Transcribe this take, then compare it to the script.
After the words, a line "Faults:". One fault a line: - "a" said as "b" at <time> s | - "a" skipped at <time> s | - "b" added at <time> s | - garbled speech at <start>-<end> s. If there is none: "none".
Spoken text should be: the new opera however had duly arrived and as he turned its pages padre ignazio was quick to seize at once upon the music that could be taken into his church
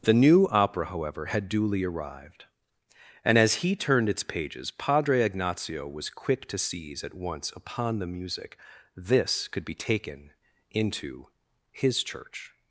the new opera however had duly arrived and as he turned its pages padre ignazio was quick to seize at once upon the music this could be taken into his church
Faults:
- "that" said as "this" at 8.9 s